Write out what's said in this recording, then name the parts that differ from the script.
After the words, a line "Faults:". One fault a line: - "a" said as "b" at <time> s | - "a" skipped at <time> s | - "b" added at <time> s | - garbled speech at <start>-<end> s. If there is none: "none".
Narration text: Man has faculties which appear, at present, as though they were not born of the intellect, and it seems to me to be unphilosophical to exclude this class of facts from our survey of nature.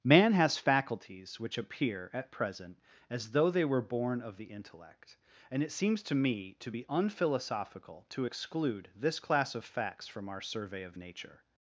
Man has faculties which appear, at present, as though they were born of the intellect, and it seems to me to be unphilosophical to exclude this class of facts from our survey of nature.
Faults:
- "not" skipped at 3.8 s